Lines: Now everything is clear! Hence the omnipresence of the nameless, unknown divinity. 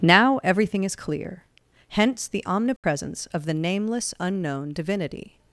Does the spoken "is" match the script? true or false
true